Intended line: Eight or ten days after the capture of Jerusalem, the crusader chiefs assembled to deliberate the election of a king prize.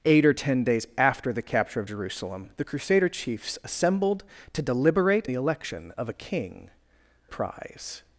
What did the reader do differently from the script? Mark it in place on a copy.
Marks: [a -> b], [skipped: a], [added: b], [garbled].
Eight or ten days after the capture of Jerusalem, the crusader chiefs assembled to deliberate the election of a king prize.